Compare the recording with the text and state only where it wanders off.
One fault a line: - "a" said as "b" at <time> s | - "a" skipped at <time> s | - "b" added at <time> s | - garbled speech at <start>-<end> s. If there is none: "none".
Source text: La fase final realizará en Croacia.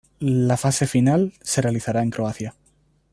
- "se" added at 1.4 s